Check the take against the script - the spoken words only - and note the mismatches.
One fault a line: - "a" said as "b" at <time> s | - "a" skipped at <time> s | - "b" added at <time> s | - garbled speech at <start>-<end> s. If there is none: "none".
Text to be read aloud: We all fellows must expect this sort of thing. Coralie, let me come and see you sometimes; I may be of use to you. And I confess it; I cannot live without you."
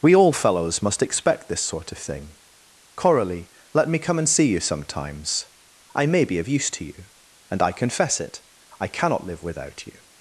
none